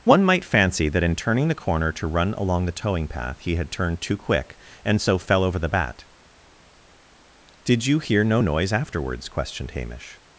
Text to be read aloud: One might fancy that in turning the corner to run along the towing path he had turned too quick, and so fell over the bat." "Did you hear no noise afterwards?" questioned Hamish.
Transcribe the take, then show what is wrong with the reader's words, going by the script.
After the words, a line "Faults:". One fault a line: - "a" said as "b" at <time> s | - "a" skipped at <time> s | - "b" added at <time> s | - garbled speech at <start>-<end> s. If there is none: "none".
One might fancy that in turning the corner to run along the towing path he had turned too quick, and so fell over the bat." "Did you hear no noise afterwards?" questioned Hamish.
Faults:
none